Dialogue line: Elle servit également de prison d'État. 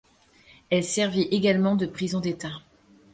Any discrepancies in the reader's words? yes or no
no